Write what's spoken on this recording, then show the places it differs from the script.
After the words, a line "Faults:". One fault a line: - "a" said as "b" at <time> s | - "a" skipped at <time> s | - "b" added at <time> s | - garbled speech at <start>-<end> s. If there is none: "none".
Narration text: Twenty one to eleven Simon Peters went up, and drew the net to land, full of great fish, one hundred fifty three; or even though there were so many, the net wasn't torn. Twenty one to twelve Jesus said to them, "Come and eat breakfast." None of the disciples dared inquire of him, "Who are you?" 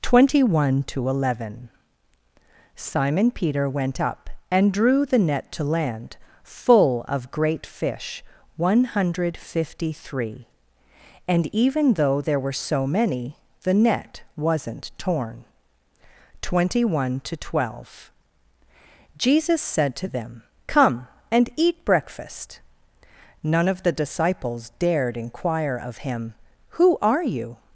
Twenty one to eleven Simon Peter went up, and drew the net to land, full of great fish, one hundred fifty three; and even though there were so many, the net wasn't torn. Twenty one to twelve Jesus said to them, "Come and eat breakfast." None of the disciples dared inquire of him, "Who are you?"
Faults:
- "Peters" said as "Peter" at 3.3 s
- "or" said as "and" at 11.3 s